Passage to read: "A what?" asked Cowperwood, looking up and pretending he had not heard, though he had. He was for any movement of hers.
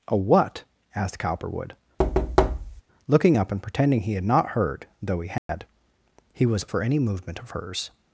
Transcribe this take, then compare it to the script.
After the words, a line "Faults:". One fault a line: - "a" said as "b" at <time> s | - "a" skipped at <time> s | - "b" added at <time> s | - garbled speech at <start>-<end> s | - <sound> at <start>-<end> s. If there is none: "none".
"A what?" asked Cowperwood, looking up and pretending he had not heard, though he had. He was for any movement of hers.
Faults:
- thud at 2.0-2.8 s
- dropout at 5.4-5.5 s